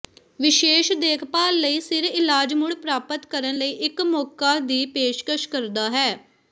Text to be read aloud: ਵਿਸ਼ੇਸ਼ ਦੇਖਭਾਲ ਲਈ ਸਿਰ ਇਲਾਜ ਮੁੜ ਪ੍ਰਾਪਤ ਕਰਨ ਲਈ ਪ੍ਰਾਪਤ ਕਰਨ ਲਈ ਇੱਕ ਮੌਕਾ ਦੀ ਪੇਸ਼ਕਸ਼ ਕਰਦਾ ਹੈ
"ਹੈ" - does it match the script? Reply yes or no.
yes